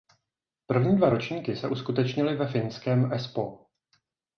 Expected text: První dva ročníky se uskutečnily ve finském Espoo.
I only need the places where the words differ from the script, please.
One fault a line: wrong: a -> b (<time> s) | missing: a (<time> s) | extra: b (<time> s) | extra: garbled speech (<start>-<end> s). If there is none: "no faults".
no faults